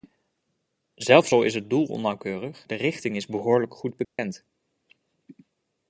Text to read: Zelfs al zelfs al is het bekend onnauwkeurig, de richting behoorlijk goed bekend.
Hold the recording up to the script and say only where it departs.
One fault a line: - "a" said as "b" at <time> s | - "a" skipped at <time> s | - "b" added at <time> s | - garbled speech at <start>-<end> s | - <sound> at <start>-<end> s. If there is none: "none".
- "zelfs al" skipped at 1.4 s
- "bekend" said as "doel" at 1.7 s
- "is" added at 3.2 s
- dropout at 4.0-4.2 s